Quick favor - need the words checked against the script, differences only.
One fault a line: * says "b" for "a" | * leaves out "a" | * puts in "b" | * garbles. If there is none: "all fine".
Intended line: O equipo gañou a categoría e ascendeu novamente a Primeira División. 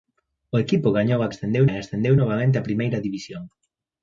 * says "ascendeu" for "categoría"